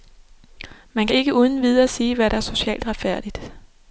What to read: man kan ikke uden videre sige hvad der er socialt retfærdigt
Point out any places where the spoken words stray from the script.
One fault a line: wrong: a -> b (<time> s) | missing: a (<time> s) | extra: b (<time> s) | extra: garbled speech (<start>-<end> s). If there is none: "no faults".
no faults